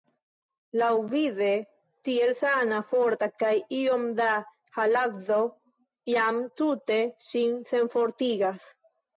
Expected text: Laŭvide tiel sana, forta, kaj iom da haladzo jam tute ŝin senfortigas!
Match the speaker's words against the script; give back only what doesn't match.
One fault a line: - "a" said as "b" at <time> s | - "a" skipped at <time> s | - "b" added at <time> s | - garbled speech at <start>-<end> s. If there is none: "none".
none